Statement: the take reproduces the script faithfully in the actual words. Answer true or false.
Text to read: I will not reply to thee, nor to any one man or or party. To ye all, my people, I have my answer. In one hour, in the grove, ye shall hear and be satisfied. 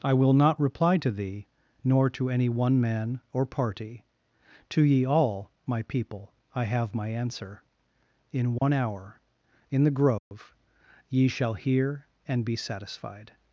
false